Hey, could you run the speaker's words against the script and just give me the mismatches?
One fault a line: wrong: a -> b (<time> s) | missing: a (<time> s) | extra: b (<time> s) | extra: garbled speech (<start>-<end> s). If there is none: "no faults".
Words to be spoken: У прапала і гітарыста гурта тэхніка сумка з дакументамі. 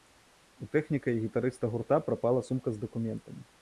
wrong: прапала -> тэхніка (0.8 s)
wrong: тэхніка -> прапала (2.1 s)